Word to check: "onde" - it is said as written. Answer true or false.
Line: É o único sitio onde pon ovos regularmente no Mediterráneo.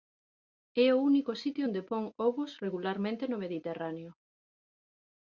true